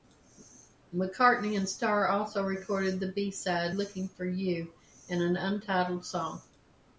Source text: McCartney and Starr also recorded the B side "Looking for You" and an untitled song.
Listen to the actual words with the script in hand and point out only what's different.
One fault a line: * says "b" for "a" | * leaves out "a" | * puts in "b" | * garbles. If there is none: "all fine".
all fine